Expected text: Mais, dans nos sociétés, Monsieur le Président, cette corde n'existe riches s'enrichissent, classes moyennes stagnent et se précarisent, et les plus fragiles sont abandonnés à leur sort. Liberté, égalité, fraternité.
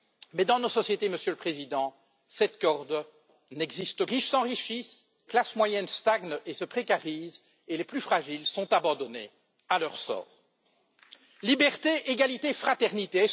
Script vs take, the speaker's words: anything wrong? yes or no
no